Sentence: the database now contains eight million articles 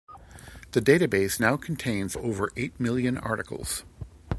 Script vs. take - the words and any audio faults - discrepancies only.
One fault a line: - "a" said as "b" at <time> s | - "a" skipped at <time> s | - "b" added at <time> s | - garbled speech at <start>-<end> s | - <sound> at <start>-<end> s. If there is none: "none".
- "over" added at 2.1 s